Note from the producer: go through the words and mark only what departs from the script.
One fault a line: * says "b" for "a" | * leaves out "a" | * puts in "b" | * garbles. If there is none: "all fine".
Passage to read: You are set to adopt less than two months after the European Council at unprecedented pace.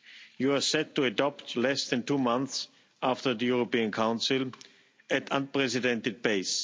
all fine